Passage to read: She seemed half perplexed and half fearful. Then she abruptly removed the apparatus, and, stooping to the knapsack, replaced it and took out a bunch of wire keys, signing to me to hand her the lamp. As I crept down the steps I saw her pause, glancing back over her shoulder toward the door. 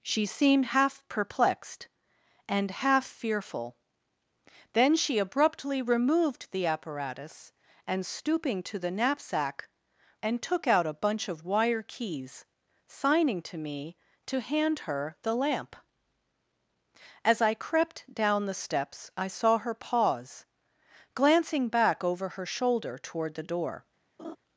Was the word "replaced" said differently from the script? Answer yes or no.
yes